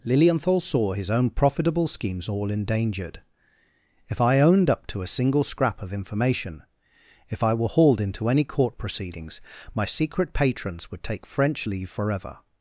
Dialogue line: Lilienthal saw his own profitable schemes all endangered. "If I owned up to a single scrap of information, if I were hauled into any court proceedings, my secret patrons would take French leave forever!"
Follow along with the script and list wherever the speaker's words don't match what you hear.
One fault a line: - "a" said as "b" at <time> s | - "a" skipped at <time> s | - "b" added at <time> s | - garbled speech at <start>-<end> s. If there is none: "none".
none